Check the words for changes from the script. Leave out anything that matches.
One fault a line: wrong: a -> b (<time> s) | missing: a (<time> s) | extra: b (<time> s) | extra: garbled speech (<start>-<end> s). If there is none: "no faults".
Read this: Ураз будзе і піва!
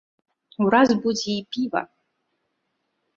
no faults